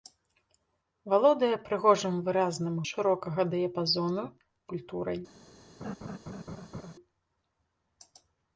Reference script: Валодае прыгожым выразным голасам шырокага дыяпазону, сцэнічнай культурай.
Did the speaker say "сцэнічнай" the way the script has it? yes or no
no